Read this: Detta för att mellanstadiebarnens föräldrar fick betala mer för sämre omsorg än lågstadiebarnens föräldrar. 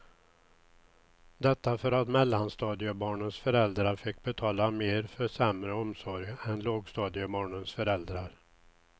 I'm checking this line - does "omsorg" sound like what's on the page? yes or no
yes